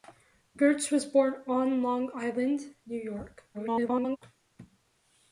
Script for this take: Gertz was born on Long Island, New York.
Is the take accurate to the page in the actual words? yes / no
no